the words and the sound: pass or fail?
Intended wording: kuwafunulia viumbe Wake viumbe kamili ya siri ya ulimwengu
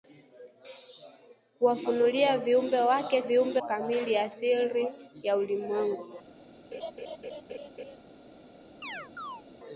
fail